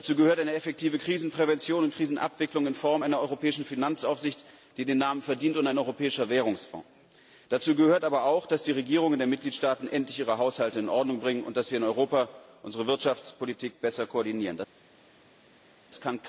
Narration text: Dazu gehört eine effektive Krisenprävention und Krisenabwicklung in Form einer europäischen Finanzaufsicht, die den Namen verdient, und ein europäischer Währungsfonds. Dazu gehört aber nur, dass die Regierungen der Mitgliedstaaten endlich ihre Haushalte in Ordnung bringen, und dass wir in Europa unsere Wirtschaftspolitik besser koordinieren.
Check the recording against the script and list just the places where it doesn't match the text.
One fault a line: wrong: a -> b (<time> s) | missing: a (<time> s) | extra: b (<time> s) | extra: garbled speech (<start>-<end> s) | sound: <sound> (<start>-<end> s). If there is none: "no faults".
wrong: nur -> auch (8.2 s)